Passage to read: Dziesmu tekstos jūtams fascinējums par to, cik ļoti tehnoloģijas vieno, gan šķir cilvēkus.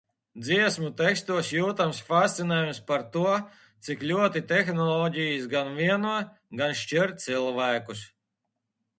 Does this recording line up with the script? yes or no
no